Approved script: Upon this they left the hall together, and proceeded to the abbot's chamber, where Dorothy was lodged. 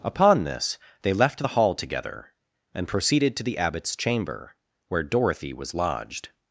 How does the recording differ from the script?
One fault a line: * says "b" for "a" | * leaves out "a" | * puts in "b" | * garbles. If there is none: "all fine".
all fine